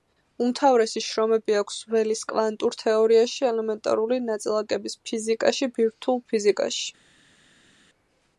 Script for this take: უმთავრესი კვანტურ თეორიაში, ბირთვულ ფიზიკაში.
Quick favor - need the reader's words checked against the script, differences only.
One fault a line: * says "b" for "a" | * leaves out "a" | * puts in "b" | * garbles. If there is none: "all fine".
* puts in "შრომები აქვს ველის"
* puts in "ელემენტარული ნაწილაკების ფიზიკაში"